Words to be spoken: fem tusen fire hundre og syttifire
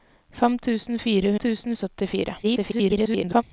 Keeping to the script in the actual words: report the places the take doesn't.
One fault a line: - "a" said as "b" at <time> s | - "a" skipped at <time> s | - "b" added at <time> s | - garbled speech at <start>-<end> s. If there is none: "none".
- "hundre" said as "tusen" at 1.4 s
- garbled speech at 2.4-3.4 s